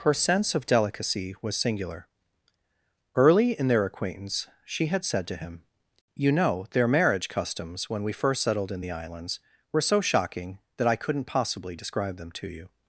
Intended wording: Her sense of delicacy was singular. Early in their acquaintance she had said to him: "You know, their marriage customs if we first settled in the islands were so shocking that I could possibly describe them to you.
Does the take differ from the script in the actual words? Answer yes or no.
yes